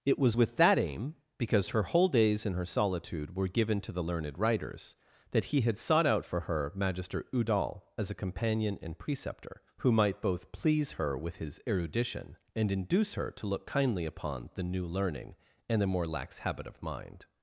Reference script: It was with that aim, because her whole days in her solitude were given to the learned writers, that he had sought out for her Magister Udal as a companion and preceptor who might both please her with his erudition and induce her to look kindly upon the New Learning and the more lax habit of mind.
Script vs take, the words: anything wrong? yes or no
no